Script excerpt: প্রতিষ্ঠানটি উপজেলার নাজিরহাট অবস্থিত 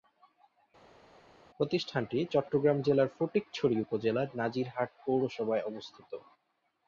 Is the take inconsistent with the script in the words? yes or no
yes